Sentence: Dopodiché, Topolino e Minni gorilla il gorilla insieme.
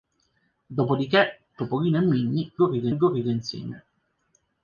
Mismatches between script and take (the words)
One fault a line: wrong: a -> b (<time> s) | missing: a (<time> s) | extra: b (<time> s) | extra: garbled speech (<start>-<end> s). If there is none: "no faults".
no faults